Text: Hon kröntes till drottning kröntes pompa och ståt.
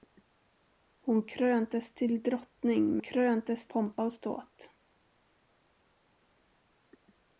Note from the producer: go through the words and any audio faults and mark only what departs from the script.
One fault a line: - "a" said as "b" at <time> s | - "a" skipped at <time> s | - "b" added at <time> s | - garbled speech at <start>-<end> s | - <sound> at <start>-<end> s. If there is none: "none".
none